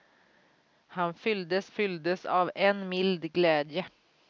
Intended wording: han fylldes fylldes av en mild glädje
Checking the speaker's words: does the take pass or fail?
pass